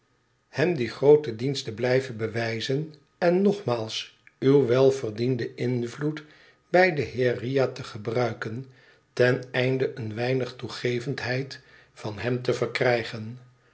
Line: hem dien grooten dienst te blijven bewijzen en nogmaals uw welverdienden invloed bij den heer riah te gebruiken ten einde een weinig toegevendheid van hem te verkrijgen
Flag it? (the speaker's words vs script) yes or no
no